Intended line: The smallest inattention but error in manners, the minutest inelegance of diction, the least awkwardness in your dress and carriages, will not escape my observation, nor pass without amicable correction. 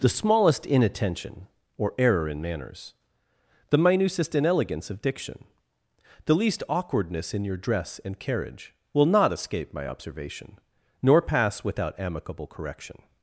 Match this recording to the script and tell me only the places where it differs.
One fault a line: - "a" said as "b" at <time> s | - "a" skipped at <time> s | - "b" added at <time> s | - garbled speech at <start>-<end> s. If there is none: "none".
- "but" said as "or" at 1.8 s
- "carriages" said as "carriage" at 8.2 s